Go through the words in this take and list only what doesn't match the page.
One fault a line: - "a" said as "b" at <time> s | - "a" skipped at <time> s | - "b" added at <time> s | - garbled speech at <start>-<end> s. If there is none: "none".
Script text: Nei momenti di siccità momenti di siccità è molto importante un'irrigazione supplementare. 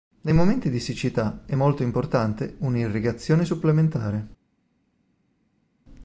- "momenti di siccità" skipped at 1.4 s